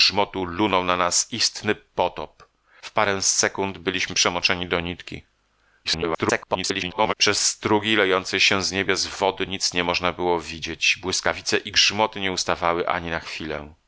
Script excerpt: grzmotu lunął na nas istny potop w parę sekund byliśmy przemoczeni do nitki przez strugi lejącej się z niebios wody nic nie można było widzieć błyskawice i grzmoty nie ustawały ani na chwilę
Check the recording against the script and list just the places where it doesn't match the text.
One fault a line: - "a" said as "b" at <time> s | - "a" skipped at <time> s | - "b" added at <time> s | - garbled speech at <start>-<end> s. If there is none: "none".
- garbled speech at 5.8-7.1 s